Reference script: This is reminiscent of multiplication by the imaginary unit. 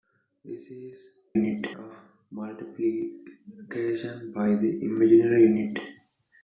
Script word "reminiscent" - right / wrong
wrong